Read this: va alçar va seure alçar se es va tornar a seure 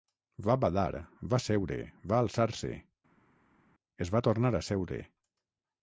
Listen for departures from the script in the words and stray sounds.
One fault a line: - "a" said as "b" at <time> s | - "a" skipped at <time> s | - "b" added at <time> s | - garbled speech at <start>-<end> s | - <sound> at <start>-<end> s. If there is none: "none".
- "alçar" said as "badar" at 0.6 s
- "va" added at 2.1 s